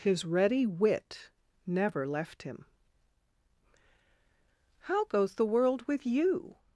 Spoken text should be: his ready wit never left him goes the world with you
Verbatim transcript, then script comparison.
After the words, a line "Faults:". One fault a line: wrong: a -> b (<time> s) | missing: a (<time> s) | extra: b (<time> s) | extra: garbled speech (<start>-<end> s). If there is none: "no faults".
his ready wit never left him how goes the world with you
Faults:
extra: how (4.8 s)